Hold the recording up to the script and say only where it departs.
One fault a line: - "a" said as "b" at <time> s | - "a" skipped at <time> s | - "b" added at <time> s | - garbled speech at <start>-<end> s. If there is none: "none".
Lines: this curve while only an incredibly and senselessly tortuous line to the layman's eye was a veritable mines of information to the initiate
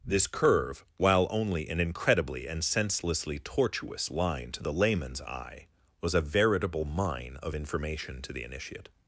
- "mines" said as "mine" at 6.8 s